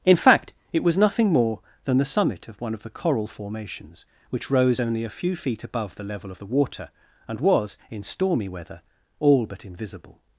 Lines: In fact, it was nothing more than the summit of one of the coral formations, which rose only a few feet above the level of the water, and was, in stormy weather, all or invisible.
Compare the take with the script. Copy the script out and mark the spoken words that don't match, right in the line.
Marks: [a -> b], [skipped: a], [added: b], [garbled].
In fact, it was nothing more than the summit of one of the coral formations, which rose only a few feet above the level of the water, and was, in stormy weather, all [or -> but] invisible.